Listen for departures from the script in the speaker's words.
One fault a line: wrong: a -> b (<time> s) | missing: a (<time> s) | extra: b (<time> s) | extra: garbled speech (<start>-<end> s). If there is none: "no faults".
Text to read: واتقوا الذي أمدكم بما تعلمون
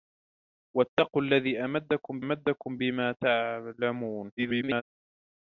extra: أمدكم (2.2 s)
extra: garbled speech (4.4-4.8 s)